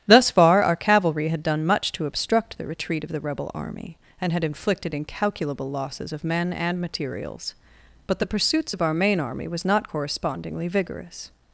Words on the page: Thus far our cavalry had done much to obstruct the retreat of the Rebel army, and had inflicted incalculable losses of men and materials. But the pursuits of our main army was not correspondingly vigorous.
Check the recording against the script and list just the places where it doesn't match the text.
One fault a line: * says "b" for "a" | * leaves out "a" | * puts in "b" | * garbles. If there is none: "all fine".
all fine